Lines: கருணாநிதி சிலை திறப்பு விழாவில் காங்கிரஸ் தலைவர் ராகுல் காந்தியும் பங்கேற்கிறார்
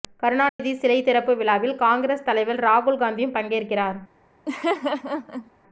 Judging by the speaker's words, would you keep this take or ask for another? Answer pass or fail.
pass